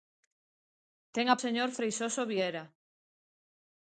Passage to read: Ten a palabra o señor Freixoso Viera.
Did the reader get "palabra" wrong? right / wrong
wrong